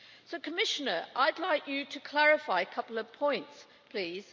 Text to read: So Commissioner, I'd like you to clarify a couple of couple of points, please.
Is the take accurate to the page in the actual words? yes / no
no